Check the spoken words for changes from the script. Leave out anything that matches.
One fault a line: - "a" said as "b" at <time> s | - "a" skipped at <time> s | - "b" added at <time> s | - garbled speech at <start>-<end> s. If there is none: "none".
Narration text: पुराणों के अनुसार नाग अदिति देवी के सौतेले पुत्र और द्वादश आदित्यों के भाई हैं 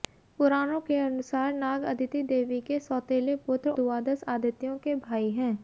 - "और" skipped at 3.7 s